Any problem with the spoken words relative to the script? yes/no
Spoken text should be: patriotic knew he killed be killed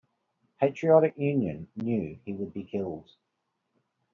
yes